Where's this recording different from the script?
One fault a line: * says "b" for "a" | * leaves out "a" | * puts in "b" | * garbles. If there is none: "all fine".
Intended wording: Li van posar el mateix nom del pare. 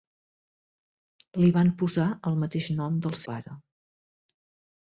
all fine